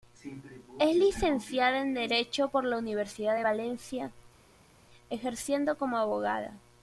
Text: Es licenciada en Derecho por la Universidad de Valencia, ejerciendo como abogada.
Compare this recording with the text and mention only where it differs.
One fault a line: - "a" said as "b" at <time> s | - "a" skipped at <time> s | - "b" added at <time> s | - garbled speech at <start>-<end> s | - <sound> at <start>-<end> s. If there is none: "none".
none